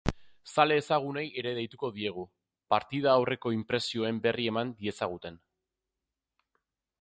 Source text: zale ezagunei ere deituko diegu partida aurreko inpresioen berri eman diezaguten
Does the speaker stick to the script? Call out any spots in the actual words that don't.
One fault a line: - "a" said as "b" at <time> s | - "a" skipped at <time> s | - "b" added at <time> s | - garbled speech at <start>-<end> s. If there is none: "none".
none